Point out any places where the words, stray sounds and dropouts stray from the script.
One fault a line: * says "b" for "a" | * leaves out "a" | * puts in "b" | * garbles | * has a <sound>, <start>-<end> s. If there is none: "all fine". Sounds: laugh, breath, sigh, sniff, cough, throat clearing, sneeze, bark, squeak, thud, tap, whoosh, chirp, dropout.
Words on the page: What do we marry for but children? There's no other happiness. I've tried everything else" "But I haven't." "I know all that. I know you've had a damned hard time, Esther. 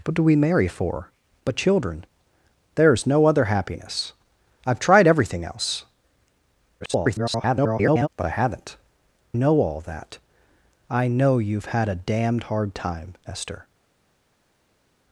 * garbles
* leaves out "I"